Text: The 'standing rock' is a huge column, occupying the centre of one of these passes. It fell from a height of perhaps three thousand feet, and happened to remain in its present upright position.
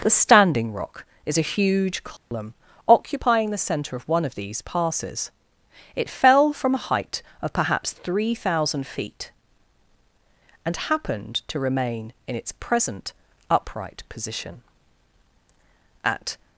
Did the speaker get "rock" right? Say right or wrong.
right